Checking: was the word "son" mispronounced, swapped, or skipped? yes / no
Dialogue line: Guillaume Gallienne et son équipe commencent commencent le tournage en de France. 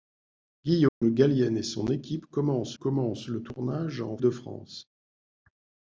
no